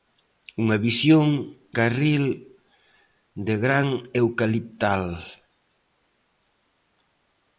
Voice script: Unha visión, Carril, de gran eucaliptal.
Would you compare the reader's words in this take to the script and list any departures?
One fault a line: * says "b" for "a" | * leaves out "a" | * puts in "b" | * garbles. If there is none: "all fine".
all fine